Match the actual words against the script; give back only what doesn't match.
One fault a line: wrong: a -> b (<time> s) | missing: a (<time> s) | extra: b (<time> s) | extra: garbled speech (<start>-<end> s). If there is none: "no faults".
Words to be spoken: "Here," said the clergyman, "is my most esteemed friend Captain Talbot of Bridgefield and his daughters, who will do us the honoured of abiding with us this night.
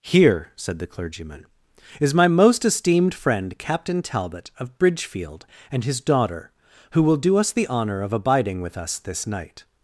wrong: daughters -> daughter (6.0 s)
wrong: honoured -> honour (7.7 s)